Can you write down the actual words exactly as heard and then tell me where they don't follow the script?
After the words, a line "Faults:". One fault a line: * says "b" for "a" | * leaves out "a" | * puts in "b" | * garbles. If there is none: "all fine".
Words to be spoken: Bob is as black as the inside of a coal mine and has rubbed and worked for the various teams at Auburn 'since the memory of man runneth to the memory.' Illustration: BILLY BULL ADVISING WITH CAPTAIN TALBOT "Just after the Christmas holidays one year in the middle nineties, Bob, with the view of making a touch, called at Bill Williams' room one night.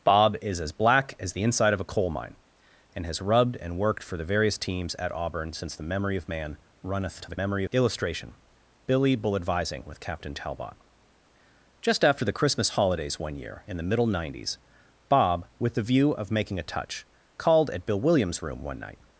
Bob is as black as the inside of a coal mine and has rubbed and worked for the various teams at Auburn 'since the memory of man runneth to the memory.' Illustration: BILLY BULL ADVISING WITH CAPTAIN TALBOT "Just after the Christmas holidays one year in the middle nineties, Bob, with the view of making a touch, called at Bill Williams' room one night.
Faults:
all fine